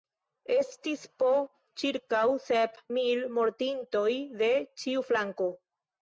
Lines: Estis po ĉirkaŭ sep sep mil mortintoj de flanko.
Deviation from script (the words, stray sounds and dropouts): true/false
true